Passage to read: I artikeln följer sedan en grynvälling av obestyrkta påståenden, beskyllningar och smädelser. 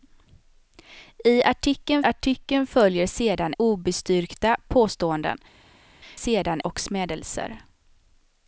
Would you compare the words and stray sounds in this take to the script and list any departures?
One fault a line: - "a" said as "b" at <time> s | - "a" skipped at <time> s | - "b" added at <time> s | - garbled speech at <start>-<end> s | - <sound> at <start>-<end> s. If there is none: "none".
- "artikeln" added at 2.0 s
- "en grynvälling av" skipped at 3.5 s
- "beskyllningar" said as "sedan" at 6.1 s